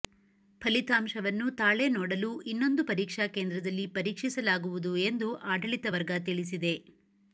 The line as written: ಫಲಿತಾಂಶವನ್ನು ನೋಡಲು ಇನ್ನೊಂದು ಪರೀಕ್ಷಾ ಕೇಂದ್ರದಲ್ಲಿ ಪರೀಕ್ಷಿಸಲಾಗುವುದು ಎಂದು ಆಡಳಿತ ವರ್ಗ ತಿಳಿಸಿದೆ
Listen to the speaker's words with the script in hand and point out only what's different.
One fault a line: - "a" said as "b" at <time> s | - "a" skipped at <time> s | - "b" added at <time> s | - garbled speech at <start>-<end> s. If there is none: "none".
- "ತಾಳೆ" added at 1.6 s